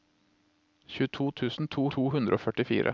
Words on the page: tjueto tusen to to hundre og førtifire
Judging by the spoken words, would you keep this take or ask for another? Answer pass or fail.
pass